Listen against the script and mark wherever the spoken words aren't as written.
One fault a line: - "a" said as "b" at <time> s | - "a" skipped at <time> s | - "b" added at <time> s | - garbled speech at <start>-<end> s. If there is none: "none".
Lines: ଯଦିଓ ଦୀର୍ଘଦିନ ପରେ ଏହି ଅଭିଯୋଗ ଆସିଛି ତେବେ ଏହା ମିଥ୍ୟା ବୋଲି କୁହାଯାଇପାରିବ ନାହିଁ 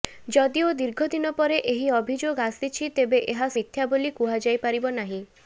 none